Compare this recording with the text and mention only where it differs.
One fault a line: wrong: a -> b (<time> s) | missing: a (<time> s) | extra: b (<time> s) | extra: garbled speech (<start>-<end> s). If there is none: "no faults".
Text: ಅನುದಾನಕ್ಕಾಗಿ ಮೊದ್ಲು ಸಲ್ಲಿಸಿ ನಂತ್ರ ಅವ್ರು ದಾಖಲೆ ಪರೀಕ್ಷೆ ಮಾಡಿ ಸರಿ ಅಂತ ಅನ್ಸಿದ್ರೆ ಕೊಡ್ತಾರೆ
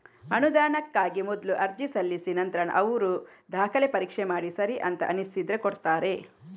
extra: ಅರ್ಜಿ (1.6 s)